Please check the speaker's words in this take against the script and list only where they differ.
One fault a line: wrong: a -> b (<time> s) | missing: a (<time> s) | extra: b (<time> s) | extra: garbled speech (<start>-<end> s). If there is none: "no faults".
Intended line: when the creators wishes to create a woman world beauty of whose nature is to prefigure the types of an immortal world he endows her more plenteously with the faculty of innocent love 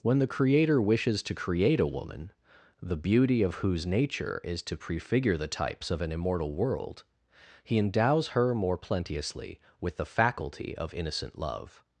wrong: creators -> creator (0.3 s)
wrong: world -> the (2.8 s)